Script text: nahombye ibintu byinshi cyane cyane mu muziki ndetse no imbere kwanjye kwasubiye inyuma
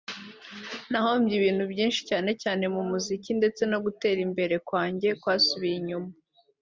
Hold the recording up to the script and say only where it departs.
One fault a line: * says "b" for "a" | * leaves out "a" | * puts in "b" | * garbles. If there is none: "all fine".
* puts in "gutera"